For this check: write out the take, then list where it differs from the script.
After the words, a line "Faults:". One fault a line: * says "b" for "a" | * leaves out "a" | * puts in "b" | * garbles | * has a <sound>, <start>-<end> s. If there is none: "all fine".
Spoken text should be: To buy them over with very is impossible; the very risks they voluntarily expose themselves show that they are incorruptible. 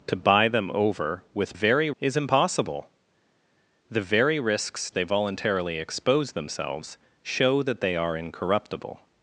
To buy them over with very is impossible; the very risks they voluntarily expose themselves show that they are incorruptible.
Faults:
all fine